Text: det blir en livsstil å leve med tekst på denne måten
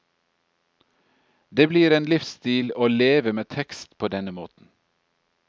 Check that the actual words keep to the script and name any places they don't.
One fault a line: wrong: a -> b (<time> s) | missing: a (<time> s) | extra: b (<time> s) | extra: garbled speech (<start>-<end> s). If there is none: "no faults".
no faults